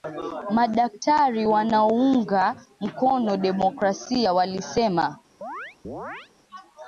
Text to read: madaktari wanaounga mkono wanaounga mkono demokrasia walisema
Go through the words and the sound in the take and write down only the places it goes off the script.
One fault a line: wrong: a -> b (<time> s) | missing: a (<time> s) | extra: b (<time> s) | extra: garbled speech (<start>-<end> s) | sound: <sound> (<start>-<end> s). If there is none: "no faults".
missing: wanaounga mkono (3.4 s)
sound: chirp (5.4-6.3 s)